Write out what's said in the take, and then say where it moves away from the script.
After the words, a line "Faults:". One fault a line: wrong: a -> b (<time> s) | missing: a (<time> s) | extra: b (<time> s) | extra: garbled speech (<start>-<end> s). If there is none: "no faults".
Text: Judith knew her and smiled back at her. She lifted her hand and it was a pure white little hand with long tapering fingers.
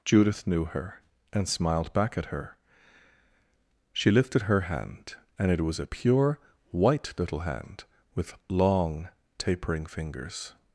Judith knew her and smiled back at her. She lifted her hand and it was a pure white little hand with long tapering fingers.
Faults:
no faults